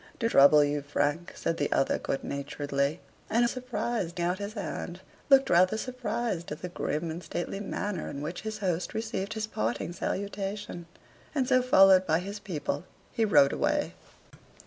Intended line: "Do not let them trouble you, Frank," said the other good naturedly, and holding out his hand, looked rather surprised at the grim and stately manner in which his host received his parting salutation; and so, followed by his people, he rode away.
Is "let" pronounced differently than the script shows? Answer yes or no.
yes